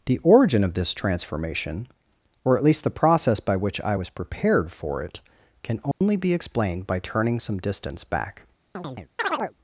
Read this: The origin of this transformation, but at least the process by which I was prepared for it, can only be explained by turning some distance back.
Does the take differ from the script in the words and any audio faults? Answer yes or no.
yes